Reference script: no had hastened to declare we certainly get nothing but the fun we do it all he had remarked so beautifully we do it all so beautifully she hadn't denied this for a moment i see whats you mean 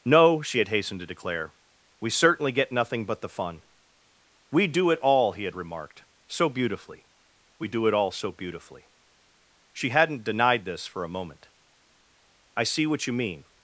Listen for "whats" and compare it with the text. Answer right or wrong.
wrong